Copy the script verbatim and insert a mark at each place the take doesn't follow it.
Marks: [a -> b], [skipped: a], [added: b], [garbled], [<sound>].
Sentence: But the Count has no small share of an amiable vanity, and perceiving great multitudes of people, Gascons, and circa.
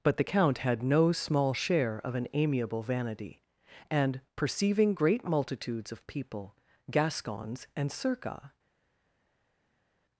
But the Count [has -> had] no small share of an amiable vanity, and perceiving great multitudes of people, Gascons, and circa.